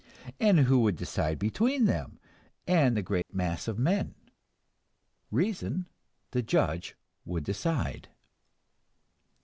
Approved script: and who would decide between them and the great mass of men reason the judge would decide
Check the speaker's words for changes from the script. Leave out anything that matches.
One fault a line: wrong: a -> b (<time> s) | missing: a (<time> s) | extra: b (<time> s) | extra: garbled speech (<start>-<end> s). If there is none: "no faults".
no faults